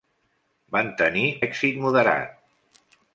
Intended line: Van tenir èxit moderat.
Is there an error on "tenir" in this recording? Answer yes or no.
no